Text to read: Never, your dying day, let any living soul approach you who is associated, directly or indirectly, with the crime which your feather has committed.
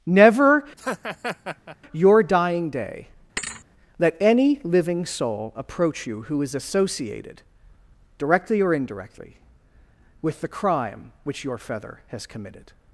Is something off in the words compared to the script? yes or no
no